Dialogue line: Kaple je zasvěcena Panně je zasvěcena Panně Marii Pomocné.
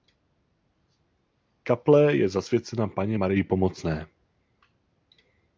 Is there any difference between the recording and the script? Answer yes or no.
yes